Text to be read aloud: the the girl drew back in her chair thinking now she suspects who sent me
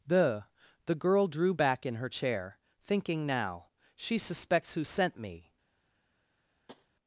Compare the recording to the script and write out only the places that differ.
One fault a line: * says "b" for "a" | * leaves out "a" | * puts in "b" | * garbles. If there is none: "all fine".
all fine